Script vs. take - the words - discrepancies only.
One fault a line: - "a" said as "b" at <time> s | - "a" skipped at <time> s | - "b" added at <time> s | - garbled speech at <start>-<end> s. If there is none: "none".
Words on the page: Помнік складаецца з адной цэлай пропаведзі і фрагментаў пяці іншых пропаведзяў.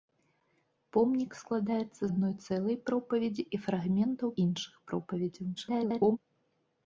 - "з" skipped at 2.0 s
- "пяці" skipped at 4.3 s
- garbled speech at 5.6-6.2 s